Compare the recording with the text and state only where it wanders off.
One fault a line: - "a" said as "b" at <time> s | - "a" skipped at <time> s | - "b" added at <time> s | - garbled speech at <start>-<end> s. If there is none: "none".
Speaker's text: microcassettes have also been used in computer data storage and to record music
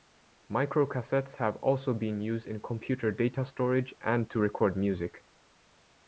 none